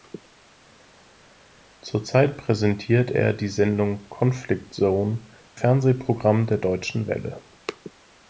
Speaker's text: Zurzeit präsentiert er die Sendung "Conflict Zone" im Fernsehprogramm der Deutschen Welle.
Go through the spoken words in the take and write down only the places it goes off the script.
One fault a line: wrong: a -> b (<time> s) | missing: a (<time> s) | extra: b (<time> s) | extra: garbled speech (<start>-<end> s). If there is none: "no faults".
missing: im (5.3 s)